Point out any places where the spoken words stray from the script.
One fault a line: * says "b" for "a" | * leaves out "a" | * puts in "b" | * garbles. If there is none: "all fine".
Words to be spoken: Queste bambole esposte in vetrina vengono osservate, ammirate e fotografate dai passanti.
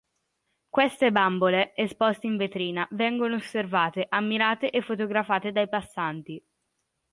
all fine